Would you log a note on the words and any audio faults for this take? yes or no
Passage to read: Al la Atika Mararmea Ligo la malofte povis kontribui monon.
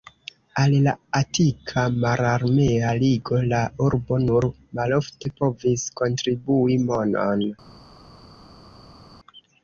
yes